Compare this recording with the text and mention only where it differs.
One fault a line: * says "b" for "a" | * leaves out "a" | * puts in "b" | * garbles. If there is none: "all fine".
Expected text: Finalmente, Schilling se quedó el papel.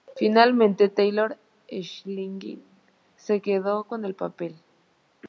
* puts in "Taylor"
* puts in "con"